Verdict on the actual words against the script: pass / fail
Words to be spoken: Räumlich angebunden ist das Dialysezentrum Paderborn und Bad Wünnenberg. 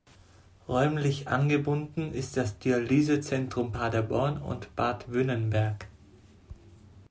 pass